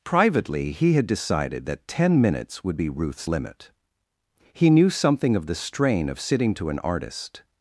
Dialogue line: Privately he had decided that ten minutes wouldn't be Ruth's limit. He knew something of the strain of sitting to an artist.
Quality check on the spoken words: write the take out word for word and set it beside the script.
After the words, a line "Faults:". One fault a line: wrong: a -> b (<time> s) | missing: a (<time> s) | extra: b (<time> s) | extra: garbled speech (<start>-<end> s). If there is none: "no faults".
Privately he had decided that ten minutes would be Ruth's limit. He knew something of the strain of sitting to an artist.
Faults:
wrong: wouldn't -> would (2.6 s)